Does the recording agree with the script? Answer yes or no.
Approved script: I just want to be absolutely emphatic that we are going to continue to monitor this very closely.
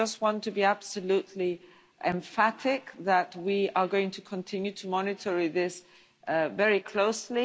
yes